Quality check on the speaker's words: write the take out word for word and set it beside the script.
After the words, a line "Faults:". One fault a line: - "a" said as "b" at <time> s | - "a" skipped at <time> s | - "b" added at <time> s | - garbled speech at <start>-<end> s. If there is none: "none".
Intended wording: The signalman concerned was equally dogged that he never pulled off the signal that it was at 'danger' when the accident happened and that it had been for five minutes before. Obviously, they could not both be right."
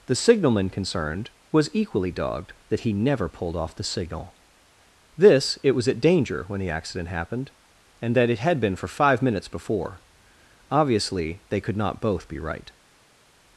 The signalman concerned was equally dogged that he never pulled off the signal this it was at 'danger' when the accident happened and that it had been for five minutes before. Obviously, they could not both be right."
Faults:
- "that" said as "this" at 5.2 s